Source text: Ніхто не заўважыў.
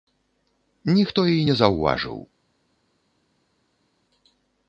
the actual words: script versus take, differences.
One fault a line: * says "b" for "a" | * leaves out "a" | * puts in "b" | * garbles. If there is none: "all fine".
* puts in "і"